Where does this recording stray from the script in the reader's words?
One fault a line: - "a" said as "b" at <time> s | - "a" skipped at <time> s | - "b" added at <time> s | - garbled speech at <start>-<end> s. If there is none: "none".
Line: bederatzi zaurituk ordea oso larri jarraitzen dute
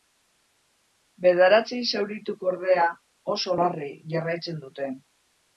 none